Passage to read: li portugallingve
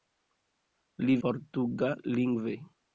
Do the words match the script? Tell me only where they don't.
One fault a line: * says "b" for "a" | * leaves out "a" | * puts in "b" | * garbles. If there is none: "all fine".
all fine